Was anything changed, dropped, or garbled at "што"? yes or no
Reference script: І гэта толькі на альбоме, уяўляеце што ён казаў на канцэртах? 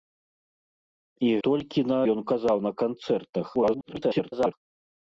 yes